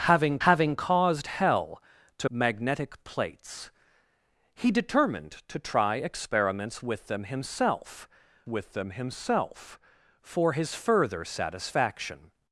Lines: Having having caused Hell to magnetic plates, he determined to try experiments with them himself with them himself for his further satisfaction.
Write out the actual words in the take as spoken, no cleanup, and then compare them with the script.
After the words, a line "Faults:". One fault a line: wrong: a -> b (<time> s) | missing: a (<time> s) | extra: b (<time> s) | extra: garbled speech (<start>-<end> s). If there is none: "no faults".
Having having caused Hell to magnetic plates, he determined to try experiments with them himself with them himself for his further satisfaction.
Faults:
no faults